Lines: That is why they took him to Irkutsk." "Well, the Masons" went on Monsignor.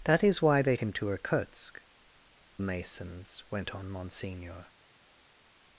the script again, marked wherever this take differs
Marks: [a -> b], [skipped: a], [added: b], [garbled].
That is why they [skipped: took] him to Irkutsk." [skipped: "Well, the] Masons" went on Monsignor.